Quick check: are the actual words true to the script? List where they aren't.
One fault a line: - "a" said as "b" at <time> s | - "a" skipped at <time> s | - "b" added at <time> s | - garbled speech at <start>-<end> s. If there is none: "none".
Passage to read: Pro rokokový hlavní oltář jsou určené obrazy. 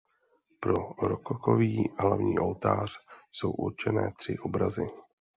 - "tři" added at 4.1 s